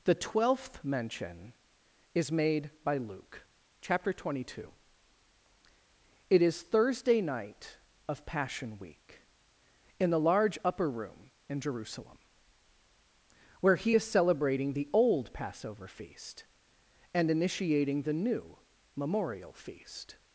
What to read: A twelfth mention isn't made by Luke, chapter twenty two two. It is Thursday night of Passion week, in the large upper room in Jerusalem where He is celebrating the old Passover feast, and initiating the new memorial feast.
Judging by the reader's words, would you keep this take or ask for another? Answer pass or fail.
fail